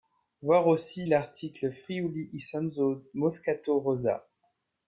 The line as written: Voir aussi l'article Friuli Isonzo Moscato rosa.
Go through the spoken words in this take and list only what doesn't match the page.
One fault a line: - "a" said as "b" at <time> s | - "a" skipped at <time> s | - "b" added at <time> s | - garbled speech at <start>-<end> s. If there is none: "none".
none